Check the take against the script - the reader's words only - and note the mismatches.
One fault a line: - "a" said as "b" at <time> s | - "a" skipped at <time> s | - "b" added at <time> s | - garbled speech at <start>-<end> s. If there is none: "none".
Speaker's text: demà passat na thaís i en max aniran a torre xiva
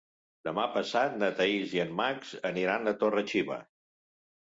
none